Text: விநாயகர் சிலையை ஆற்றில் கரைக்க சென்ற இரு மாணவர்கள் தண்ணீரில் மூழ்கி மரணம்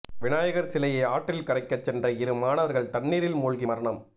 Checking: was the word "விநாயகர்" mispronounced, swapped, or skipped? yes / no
no